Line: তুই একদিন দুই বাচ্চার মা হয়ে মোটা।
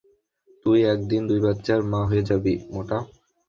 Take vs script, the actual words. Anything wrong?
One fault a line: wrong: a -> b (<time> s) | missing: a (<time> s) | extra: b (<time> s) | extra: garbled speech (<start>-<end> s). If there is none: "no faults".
extra: যাবি (2.3 s)